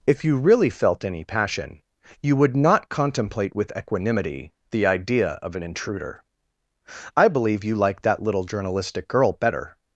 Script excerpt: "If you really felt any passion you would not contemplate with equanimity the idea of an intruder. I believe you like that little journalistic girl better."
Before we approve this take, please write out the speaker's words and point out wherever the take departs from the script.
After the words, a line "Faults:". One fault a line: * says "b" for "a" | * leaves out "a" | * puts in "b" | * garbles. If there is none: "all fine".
"If you really felt any passion you would not contemplate with equanimity the idea of an intruder. I believe you like that little journalistic girl better."
Faults:
all fine